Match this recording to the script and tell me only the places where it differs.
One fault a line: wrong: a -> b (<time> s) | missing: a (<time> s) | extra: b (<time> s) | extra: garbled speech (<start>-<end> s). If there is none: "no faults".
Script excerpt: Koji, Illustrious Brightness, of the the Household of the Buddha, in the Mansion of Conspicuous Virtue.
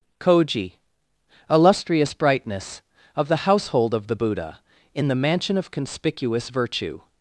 missing: the (3.5 s)